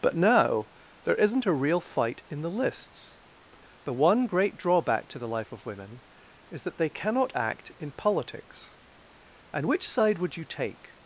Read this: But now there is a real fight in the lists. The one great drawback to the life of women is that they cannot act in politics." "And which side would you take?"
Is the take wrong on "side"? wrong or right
right